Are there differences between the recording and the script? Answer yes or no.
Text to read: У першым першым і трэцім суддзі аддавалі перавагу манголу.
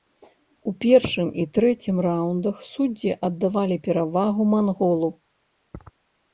yes